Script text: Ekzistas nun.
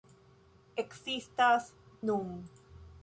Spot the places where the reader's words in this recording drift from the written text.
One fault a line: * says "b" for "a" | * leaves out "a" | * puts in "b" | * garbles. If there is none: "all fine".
all fine